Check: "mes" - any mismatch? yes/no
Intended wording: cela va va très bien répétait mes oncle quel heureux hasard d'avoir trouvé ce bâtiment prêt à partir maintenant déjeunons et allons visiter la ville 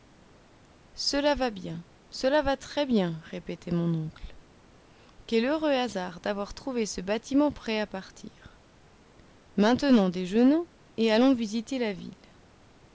yes